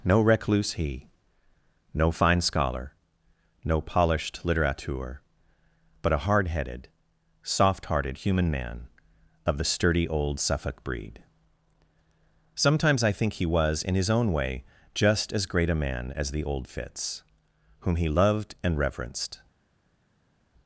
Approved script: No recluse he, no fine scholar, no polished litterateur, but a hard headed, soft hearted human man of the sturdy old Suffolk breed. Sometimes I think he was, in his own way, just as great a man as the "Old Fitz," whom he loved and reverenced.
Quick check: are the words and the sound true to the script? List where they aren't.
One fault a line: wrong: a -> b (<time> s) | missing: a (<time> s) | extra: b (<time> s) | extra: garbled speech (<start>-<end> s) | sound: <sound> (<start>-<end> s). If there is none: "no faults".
no faults